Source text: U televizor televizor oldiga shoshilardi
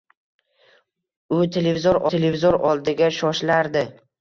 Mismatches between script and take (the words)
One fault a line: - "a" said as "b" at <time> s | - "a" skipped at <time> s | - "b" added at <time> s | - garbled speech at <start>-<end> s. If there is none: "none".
none